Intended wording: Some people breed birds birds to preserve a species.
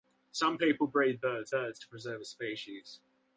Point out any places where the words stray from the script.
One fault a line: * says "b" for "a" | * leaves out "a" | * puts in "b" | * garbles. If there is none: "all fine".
all fine